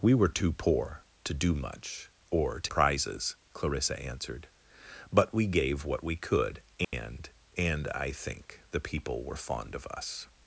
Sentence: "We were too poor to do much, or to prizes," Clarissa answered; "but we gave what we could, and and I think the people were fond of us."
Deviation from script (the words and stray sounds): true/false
true